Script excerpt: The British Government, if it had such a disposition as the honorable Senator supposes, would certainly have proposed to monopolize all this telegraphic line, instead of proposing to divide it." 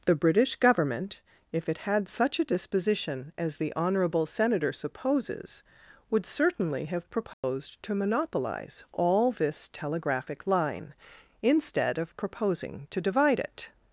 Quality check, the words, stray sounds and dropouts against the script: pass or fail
fail